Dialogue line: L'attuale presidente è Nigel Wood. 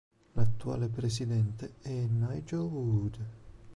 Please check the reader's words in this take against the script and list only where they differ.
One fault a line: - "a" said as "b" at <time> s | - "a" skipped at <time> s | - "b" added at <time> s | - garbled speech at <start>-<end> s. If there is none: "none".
none